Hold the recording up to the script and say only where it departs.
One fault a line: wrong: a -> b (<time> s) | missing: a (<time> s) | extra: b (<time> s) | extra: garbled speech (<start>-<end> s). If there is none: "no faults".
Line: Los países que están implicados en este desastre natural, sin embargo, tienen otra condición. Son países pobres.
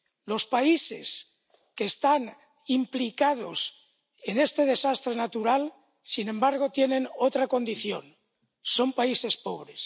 no faults